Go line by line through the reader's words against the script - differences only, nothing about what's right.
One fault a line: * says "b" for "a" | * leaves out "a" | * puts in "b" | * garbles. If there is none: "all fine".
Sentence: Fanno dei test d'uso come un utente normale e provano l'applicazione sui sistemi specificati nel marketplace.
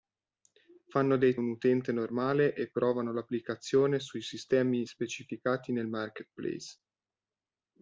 * leaves out "test d'uso come"